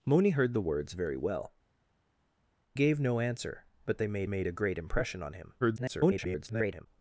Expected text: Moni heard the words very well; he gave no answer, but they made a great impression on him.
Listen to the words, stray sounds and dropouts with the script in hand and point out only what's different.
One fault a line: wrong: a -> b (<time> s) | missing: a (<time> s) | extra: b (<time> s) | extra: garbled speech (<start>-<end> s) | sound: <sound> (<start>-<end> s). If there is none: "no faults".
missing: he (1.5 s)
extra: made (4.3 s)
extra: garbled speech (5.6-6.9 s)